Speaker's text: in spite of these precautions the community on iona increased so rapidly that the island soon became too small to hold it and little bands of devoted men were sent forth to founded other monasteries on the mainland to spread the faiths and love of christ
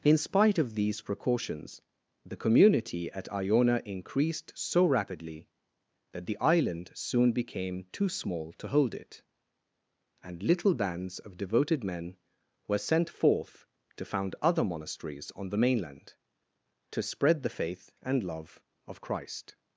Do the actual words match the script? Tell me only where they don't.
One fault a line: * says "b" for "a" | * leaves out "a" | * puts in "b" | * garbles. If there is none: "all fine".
* says "at" for "on"
* says "found" for "founded"
* says "faith" for "faiths"